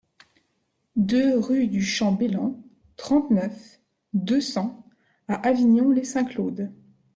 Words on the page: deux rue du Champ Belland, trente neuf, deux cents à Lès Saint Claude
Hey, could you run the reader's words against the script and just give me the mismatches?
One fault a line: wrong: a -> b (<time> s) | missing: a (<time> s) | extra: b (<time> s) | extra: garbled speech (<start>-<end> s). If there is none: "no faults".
extra: Avignon (5.5 s)